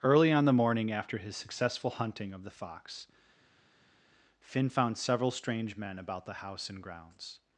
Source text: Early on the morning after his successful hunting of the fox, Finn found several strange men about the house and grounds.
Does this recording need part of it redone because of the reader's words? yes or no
no